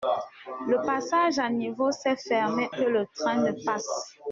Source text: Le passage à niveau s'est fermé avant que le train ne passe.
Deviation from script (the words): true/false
true